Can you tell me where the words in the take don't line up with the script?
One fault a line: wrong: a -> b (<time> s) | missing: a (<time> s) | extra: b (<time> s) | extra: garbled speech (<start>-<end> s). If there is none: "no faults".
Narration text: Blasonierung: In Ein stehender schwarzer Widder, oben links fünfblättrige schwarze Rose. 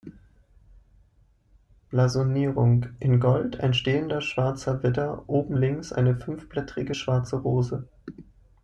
extra: Gold (3.2 s)
extra: eine (5.9 s)